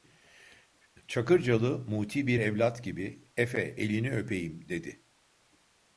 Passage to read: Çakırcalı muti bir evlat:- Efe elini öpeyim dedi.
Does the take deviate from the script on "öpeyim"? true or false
false